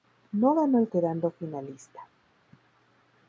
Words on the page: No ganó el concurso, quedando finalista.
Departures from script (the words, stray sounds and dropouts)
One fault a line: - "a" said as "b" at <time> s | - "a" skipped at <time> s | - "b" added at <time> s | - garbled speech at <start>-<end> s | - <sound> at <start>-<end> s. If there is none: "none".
- "concurso" skipped at 0.9 s